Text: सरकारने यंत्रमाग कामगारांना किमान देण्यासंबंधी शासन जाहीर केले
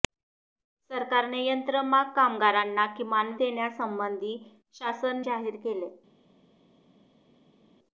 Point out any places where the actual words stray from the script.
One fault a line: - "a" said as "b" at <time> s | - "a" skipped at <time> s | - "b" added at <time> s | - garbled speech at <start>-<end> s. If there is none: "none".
none